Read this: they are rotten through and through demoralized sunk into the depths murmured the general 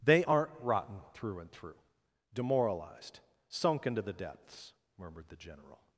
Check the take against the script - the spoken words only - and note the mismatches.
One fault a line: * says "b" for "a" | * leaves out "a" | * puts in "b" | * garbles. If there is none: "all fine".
* says "aren't" for "are"